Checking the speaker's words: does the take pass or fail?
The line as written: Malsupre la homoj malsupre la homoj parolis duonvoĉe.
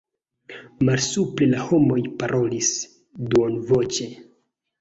fail